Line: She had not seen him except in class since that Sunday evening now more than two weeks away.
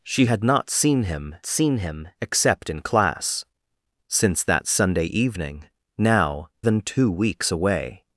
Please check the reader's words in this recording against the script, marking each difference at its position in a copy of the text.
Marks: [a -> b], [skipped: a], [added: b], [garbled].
She had not seen him [added: seen him] except in class since that Sunday evening now [skipped: more] than two weeks away.